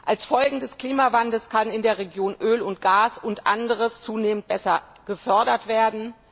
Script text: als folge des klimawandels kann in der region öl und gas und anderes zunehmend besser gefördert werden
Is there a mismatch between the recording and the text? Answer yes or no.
no